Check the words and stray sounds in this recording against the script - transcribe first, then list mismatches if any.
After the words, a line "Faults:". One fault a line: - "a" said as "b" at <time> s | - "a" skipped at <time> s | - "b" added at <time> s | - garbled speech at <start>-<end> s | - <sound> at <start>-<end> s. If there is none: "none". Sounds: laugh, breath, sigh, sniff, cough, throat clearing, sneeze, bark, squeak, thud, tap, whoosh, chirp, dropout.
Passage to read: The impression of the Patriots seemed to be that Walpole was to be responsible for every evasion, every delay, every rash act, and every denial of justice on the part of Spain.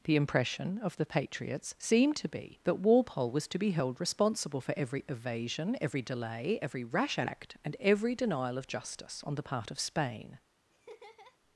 The impression of the Patriots seemed to be that Walpole was to be held responsible for every evasion, every delay, every rash act, and every denial of justice on the part of Spain.
Faults:
- "held" added at 3.7 s
- laugh at 10.7-11.4 s